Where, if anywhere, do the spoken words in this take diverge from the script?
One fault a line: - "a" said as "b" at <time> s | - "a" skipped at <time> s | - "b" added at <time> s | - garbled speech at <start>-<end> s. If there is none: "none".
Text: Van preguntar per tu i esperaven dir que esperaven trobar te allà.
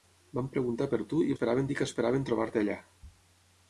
none